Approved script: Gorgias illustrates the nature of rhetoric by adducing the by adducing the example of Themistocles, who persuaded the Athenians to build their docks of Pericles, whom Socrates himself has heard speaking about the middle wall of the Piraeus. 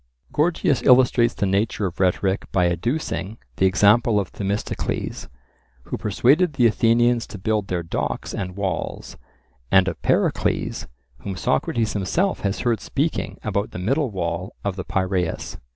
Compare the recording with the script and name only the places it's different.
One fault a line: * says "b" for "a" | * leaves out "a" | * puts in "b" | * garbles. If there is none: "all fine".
* leaves out "by adducing the"
* puts in "and walls and"